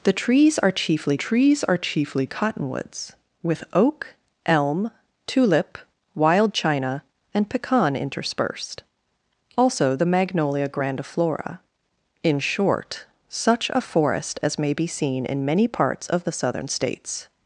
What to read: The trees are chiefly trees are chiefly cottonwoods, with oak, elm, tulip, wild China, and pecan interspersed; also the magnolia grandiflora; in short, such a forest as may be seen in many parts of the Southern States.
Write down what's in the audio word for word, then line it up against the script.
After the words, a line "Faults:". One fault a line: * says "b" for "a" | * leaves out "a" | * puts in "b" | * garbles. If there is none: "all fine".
The trees are chiefly trees are chiefly cottonwoods, with oak, elm, tulip, wild China, and pecan interspersed; also the magnolia grandiflora; in short, such a forest as may be seen in many parts of the Southern States.
Faults:
all fine